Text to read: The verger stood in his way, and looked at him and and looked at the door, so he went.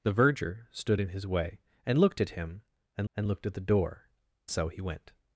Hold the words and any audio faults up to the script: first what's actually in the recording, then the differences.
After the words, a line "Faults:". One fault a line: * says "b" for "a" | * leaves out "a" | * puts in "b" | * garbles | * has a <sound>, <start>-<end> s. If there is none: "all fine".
The verger stood in his way, and looked at him and and looked at the door, so he went.
Faults:
all fine